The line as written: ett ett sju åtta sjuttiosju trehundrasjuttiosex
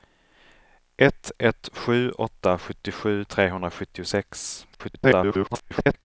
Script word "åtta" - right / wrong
right